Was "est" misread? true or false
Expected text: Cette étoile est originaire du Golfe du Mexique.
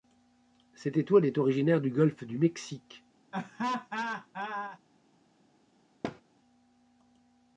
false